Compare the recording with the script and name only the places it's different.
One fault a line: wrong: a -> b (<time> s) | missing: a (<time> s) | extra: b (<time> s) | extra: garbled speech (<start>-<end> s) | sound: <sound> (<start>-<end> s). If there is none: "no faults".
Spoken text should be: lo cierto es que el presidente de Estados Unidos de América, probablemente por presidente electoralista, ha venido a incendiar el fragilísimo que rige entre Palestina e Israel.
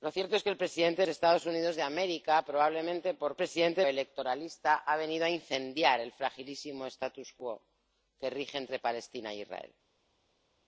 no faults